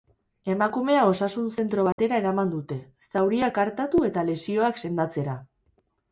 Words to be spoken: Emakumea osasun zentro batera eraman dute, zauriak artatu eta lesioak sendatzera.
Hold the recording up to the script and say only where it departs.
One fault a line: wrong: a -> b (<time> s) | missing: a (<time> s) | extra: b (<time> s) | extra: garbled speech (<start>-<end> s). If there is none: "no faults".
no faults